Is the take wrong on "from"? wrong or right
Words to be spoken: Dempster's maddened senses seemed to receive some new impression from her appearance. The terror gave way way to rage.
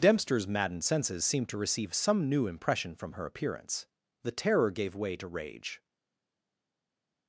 right